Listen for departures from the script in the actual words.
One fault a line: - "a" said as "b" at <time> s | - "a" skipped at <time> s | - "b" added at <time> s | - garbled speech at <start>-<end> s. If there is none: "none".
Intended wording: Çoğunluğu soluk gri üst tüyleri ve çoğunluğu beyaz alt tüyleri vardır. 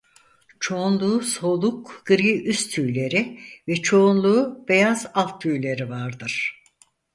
none